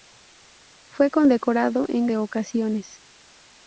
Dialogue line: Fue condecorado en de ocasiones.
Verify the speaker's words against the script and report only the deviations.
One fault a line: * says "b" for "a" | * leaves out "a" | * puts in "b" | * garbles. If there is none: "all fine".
all fine